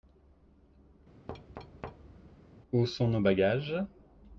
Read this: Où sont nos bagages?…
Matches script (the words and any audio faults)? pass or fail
fail